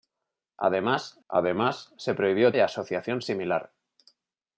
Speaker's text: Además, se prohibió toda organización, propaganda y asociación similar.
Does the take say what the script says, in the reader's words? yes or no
no